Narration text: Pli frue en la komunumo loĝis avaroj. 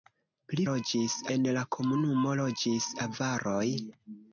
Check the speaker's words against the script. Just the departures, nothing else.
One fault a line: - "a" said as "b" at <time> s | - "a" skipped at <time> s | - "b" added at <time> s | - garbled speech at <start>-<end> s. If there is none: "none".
- "frue" said as "loĝis" at 0.7 s